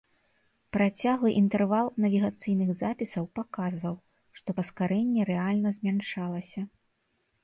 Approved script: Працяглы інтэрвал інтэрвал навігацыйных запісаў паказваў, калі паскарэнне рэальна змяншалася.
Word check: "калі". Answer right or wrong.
wrong